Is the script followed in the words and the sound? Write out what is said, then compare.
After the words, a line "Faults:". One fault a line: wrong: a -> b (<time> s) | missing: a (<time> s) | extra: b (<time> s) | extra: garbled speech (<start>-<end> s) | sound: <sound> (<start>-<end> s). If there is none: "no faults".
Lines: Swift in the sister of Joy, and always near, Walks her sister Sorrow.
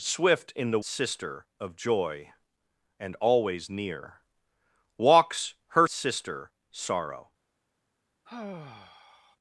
Swift in the sister of Joy, and always near, Walks her sister Sorrow.
Faults:
sound: sigh (8.3-9.4 s)